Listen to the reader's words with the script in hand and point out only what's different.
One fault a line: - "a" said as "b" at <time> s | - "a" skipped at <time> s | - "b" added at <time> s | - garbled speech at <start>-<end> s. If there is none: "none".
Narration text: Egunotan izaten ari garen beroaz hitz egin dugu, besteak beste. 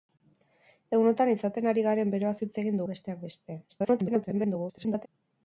- "dugu" skipped at 2.8 s
- garbled speech at 3.7-5.1 s